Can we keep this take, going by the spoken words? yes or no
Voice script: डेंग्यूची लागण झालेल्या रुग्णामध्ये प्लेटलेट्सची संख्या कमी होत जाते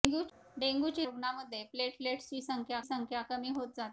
no